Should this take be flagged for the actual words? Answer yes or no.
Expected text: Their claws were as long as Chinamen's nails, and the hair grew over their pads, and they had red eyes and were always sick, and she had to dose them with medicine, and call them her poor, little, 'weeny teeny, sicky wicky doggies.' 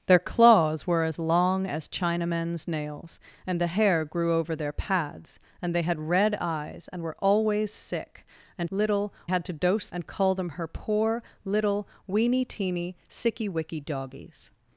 yes